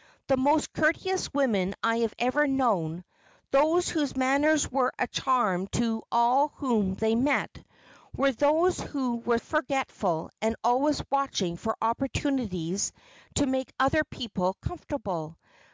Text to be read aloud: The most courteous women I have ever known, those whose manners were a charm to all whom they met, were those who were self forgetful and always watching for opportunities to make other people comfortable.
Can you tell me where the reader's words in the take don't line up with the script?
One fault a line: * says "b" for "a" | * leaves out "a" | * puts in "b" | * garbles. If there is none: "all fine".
* leaves out "self"